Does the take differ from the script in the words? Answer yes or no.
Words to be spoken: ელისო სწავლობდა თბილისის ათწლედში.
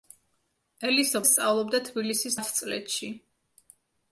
no